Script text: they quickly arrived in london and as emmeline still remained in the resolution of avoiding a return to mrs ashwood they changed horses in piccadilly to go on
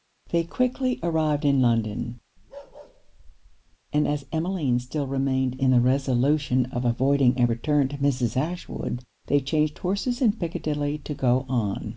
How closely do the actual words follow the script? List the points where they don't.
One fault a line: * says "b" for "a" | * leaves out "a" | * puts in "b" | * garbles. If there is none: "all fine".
all fine